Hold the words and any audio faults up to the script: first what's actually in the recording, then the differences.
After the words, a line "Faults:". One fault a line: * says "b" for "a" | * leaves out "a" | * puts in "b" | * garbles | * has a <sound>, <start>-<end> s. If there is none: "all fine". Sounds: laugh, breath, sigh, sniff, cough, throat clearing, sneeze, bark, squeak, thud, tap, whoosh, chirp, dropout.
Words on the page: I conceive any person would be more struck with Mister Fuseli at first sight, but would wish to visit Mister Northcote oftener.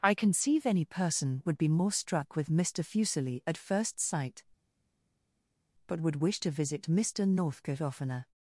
I conceive any person would be more struck with Mister Fuseli at first sight, but would wish to visit Mister Northcote oftener.
Faults:
all fine